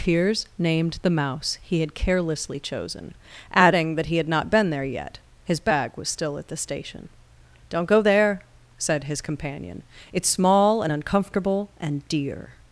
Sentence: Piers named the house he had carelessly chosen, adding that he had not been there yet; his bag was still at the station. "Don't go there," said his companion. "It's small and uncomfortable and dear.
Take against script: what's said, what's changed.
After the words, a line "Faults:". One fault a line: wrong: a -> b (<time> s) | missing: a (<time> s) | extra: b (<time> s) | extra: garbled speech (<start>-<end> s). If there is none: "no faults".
Piers named the mouse he had carelessly chosen, adding that he had not been there yet; his bag was still at the station. "Don't go there," said his companion. "It's small and uncomfortable and dear.
Faults:
wrong: house -> mouse (1.1 s)